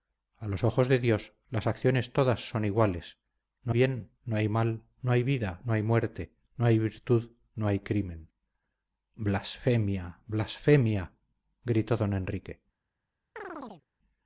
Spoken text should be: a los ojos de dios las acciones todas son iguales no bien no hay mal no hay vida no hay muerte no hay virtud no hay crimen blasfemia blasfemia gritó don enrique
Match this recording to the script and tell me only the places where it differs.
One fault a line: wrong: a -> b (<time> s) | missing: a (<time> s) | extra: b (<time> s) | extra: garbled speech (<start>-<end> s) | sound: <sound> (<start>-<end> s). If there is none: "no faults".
sound: chirp (13.4-13.8 s)